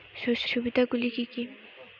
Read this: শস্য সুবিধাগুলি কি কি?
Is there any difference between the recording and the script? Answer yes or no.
no